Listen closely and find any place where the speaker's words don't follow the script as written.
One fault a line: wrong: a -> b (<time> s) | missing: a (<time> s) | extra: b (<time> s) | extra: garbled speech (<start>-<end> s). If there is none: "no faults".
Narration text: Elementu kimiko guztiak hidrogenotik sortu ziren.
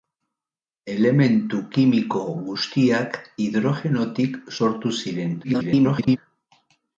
extra: garbled speech (5.4-6.2 s)